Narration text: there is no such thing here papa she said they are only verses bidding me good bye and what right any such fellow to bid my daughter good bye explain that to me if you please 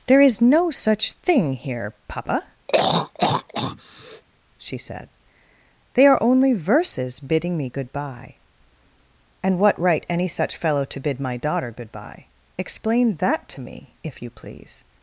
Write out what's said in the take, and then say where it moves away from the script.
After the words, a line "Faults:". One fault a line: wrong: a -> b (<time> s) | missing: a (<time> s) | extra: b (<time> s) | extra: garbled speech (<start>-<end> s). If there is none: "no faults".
there is no such thing here papa she said they are only verses bidding me good bye and what right any such fellow to bid my daughter good bye explain that to me if you please
Faults:
no faults